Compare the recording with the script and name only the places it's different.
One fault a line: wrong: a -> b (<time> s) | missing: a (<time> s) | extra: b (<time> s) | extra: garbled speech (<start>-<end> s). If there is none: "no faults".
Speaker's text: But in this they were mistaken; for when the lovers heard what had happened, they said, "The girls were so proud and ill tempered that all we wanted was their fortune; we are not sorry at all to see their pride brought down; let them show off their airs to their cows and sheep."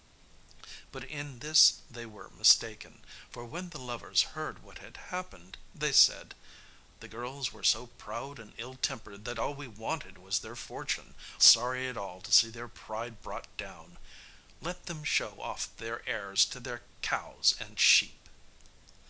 missing: we are not (11.1 s)